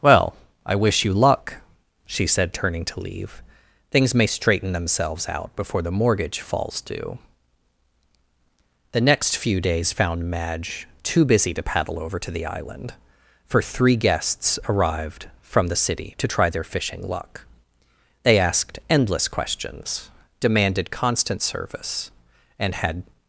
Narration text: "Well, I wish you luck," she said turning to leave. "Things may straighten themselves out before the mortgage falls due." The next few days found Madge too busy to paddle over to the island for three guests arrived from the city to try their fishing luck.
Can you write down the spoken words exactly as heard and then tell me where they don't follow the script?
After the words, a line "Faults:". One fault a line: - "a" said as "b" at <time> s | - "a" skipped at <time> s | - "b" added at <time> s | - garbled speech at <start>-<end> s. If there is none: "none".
"Well, I wish you luck," she said turning to leave. "Things may straighten themselves out before the mortgage falls due." The next few days found Madge too busy to paddle over to the island for three guests arrived from the city to try their fishing luck. They asked endless questions, demanded constant service and had
Faults:
- "They asked endless questions demanded constant service and had" added at 18.2 s